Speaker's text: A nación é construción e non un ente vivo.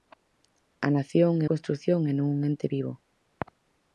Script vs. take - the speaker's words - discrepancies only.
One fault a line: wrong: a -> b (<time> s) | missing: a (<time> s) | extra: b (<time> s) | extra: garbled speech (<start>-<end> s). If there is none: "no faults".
no faults